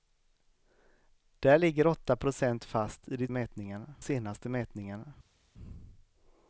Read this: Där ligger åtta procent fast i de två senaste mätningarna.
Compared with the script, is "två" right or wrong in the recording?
wrong